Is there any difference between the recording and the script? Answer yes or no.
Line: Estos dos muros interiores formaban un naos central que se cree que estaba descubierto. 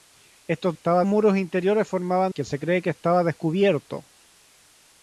yes